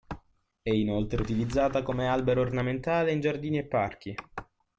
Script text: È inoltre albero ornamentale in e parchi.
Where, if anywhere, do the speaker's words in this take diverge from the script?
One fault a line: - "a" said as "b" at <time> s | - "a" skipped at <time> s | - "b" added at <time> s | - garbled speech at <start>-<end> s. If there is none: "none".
- "utilizzata come" added at 1.2 s
- "giardini" added at 3.2 s